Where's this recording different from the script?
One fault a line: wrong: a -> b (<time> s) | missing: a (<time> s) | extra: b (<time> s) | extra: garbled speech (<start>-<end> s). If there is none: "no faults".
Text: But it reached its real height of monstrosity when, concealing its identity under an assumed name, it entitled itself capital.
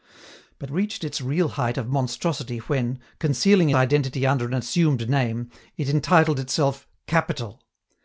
missing: it (0.7 s)
missing: its (3.7 s)